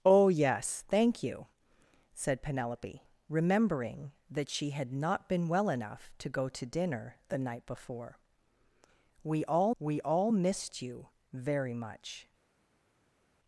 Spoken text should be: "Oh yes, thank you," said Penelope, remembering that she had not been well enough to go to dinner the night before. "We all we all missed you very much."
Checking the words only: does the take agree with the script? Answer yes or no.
yes